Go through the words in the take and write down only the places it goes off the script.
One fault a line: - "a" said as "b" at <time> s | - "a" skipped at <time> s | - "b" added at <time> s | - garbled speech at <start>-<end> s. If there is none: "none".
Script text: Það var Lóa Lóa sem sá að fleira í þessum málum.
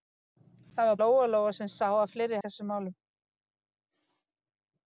none